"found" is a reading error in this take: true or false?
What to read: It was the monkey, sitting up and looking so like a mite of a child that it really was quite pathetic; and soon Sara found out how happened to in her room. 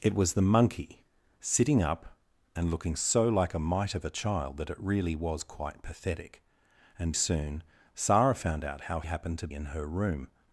false